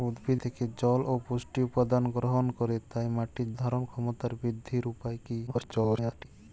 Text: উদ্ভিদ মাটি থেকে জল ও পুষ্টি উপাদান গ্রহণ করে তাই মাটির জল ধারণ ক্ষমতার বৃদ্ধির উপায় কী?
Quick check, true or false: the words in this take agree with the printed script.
false